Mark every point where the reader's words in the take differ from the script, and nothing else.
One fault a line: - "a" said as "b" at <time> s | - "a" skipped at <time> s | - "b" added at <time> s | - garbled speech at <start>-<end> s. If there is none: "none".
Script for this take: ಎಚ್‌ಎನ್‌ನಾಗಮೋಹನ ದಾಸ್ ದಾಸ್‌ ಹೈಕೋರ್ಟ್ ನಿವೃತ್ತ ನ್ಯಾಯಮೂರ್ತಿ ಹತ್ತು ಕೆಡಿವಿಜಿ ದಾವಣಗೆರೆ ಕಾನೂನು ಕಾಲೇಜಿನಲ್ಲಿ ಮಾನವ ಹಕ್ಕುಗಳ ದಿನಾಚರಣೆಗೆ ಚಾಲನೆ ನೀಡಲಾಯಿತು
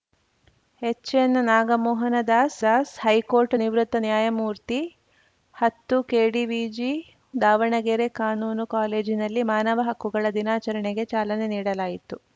none